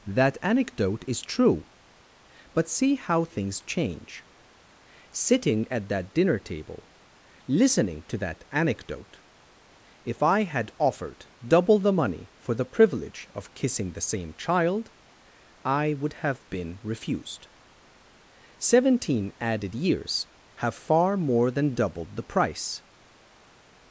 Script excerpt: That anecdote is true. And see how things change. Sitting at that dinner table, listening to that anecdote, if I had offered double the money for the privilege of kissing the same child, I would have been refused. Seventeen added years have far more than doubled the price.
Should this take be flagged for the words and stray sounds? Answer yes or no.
yes